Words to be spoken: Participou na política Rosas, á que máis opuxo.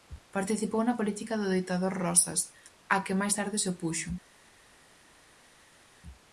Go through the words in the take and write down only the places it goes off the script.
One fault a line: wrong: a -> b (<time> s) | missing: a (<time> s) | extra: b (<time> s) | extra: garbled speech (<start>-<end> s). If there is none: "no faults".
extra: do ditador (1.4 s)
extra: tarde se (3.4 s)